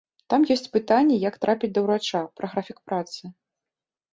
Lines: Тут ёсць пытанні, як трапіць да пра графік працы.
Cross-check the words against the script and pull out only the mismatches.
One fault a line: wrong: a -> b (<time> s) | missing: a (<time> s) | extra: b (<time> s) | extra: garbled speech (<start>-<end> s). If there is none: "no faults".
wrong: Тут -> Там (0.3 s)
extra: ўрача (1.9 s)